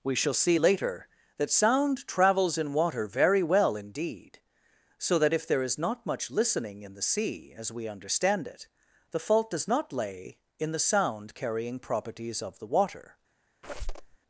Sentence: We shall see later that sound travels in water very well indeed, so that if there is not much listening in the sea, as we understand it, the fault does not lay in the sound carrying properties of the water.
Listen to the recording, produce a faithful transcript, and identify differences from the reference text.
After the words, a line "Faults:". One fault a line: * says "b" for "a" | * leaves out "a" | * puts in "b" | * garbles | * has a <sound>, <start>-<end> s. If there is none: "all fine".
We shall see later that sound travels in water very well indeed, so that if there is not much listening in the sea, as we understand it, the fault does not lay in the sound carrying properties of the water.
Faults:
* has a squeak, 13.6-14.2 s